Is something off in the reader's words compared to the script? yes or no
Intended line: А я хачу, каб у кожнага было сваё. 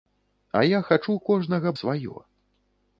yes